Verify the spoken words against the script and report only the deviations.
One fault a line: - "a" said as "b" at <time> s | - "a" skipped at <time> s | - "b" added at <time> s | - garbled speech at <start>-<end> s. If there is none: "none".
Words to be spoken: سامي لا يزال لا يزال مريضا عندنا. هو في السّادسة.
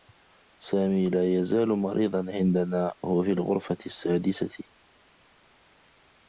- "لا يزال" skipped at 1.7 s
- "الغرفة" added at 3.3 s